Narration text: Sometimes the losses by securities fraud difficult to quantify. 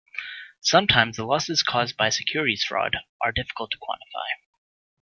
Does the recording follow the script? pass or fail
fail